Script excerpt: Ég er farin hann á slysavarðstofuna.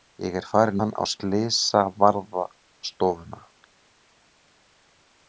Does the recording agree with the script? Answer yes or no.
yes